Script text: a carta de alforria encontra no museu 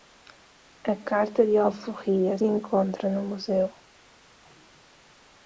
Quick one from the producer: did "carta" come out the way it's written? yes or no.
yes